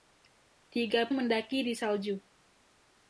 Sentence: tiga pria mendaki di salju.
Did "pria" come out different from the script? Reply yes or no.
yes